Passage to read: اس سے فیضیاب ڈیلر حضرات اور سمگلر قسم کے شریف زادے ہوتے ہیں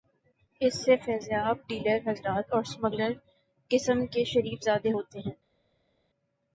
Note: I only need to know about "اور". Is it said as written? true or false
true